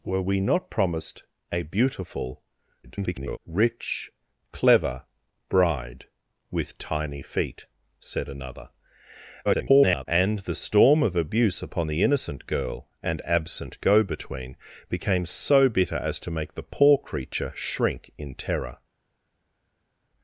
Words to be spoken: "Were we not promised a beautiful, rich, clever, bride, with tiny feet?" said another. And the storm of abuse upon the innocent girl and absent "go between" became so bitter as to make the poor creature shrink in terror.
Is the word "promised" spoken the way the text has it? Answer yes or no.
yes